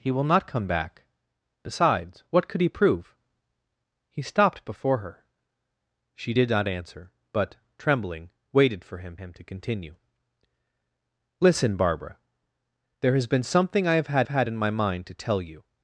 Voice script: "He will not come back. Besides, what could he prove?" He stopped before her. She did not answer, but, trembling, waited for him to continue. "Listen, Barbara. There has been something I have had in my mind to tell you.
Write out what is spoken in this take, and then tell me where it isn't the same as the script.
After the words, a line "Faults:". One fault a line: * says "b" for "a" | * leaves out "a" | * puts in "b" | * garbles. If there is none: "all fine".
"He will not come back. Besides, what could he prove?" He stopped before her. She did not answer, but, trembling, waited for him him to continue. "Listen, Barbara. There has been something I have had had in my mind to tell you.
Faults:
* puts in "him"
* puts in "had"